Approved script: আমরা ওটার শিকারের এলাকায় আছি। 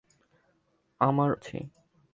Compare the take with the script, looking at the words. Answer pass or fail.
fail